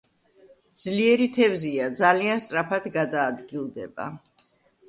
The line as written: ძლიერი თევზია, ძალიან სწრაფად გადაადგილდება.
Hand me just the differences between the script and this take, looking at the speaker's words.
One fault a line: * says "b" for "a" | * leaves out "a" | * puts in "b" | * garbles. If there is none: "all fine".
all fine